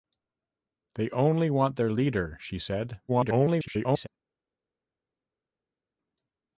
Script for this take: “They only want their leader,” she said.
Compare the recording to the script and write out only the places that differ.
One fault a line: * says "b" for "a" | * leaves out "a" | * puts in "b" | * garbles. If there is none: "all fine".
* garbles